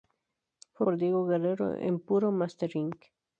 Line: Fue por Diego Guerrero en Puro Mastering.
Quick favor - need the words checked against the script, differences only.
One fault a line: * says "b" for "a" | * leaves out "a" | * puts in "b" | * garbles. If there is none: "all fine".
all fine